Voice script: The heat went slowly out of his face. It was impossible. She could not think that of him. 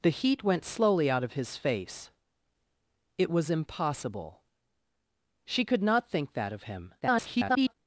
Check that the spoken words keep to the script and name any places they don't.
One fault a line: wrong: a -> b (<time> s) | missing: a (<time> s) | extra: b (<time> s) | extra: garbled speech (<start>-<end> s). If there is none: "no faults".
extra: garbled speech (7.0-7.7 s)